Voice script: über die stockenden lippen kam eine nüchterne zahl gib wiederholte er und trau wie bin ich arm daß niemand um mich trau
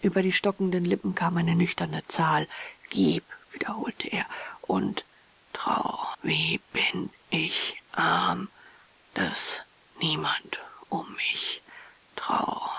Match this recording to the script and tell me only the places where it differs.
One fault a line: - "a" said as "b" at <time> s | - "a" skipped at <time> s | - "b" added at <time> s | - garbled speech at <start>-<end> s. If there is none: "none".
none